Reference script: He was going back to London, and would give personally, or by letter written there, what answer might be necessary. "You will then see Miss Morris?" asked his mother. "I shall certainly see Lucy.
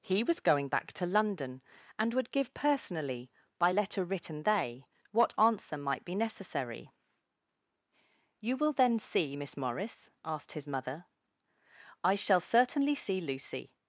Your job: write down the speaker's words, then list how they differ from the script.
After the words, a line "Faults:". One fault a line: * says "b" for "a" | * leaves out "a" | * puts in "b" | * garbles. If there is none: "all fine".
He was going back to London, and would give personally, by letter written they, what answer might be necessary. "You will then see Miss Morris?" asked his mother. "I shall certainly see Lucy.
Faults:
* leaves out "or"
* says "they" for "there"